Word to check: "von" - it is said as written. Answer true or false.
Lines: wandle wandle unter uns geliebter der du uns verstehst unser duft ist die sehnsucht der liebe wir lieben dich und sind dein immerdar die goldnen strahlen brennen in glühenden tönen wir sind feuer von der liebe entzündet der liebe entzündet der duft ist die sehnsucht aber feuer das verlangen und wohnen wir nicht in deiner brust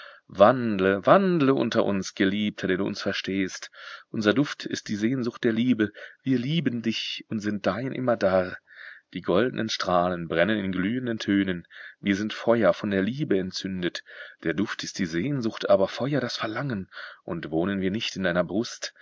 true